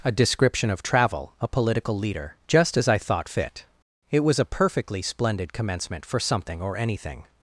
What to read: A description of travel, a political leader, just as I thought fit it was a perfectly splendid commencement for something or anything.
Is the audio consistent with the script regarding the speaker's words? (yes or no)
yes